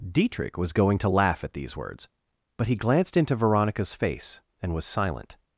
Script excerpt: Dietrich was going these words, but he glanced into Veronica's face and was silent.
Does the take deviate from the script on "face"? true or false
false